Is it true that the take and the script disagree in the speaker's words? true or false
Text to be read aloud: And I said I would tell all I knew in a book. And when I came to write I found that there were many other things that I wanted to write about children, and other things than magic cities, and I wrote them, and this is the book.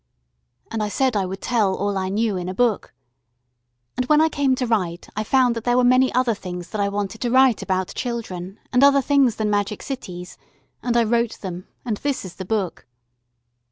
false